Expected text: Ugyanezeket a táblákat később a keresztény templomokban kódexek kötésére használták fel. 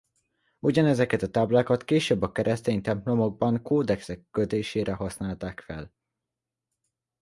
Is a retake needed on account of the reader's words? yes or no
no